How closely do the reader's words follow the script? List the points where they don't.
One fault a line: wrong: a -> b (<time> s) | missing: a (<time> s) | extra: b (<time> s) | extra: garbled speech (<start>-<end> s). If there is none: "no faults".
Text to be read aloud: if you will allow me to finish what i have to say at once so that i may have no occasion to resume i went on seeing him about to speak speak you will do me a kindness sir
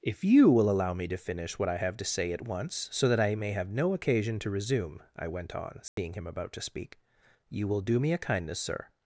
missing: speak (7.0 s)